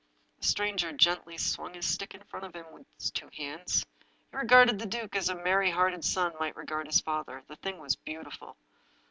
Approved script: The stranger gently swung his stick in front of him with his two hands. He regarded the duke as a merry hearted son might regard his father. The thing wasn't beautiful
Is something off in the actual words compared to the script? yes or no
yes